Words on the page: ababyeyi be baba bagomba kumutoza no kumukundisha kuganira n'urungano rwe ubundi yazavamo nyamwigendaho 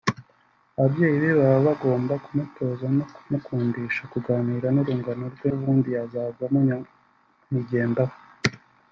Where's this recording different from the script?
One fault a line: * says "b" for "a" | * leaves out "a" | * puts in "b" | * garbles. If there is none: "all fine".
all fine